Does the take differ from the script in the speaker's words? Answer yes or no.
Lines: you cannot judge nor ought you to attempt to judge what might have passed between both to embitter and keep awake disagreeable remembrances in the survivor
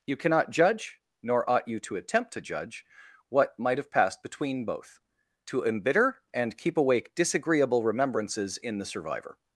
no